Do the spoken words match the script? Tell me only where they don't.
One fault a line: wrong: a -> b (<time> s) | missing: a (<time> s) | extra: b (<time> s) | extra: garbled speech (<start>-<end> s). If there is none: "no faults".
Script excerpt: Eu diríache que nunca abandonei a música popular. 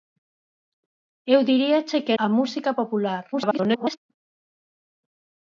missing: nunca abandonei (2.1 s)
extra: garbled speech (3.3-4.0 s)